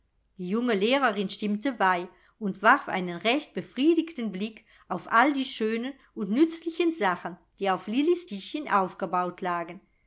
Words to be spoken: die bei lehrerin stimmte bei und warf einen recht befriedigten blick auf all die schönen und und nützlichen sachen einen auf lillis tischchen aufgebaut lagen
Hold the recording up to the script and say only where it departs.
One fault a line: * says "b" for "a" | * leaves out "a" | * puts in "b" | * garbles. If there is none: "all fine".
* says "junge" for "bei"
* leaves out "und"
* says "die" for "einen"